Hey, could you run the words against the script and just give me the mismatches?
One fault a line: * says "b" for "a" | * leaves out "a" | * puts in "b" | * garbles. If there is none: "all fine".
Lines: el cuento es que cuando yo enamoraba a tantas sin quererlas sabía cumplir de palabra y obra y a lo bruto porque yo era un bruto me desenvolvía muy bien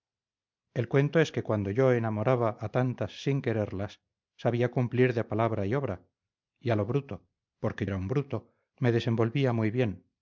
* leaves out "yo"